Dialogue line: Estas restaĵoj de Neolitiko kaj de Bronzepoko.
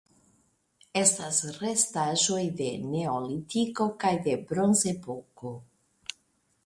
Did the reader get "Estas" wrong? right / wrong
right